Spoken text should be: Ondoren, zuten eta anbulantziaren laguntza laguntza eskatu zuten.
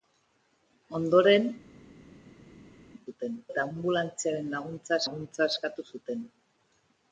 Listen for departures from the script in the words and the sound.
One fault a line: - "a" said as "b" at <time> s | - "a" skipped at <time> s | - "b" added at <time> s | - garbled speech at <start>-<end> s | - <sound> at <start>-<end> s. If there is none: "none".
none